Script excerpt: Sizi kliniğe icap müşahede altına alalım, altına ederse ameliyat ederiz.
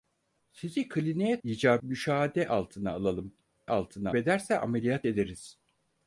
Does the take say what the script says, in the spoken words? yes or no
yes